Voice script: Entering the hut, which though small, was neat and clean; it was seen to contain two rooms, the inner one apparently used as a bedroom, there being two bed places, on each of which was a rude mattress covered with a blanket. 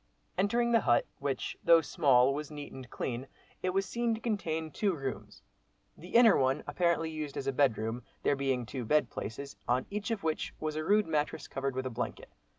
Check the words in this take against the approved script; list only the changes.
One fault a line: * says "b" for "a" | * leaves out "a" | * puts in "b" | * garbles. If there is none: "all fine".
all fine